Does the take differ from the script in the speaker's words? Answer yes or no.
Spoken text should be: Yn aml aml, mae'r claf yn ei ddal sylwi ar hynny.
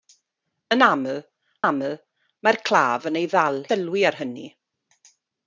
no